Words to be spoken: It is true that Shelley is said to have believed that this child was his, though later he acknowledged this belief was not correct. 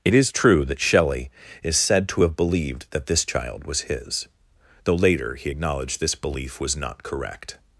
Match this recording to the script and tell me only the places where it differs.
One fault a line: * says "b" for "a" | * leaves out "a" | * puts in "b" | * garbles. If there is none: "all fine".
all fine